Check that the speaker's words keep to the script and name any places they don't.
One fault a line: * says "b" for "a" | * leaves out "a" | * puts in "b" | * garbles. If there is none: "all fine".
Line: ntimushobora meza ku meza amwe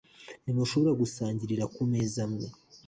* says "gusangirira" for "meza"